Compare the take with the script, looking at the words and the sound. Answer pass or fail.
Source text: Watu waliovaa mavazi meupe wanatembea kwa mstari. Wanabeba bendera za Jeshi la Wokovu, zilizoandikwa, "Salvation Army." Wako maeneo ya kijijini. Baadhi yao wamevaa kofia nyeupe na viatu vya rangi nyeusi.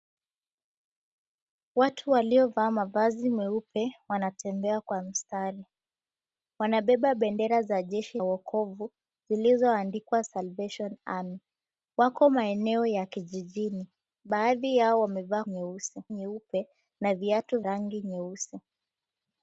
fail